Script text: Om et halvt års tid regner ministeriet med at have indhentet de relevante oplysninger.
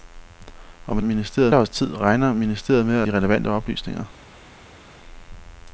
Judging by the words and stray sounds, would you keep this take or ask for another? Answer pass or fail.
fail